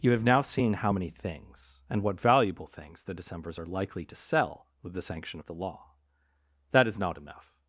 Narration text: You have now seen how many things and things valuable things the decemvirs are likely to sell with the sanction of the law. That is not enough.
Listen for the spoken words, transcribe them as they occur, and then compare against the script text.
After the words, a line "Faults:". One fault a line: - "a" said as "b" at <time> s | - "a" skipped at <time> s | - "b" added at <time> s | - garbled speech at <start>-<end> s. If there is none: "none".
You have now seen how many things and what valuable things the decemvirs are likely to sell with the sanction of the law. That is not enough.
Faults:
- "things" said as "what" at 2.0 s